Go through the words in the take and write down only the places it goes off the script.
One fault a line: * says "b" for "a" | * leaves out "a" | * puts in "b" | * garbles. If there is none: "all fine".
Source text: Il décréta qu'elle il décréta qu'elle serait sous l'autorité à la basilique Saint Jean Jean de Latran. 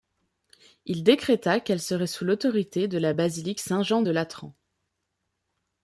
* leaves out "il décréta qu'elle"
* says "de" for "à"
* leaves out "Jean"